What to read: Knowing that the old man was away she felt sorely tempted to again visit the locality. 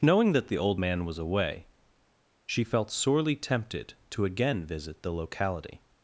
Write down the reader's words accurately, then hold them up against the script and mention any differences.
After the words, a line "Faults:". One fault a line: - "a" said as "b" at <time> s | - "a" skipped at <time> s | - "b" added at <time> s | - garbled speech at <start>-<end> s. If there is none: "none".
Knowing that the old man was away she felt sorely tempted to again visit the locality.
Faults:
none